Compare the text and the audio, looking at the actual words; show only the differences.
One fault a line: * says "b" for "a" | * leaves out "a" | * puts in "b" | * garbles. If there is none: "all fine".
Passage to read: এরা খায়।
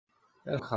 all fine